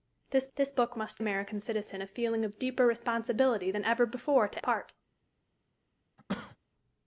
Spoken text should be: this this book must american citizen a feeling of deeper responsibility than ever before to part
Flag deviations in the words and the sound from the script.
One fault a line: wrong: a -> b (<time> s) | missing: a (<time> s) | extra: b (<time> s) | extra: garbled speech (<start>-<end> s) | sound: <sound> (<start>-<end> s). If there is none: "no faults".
sound: cough (6.2-6.6 s)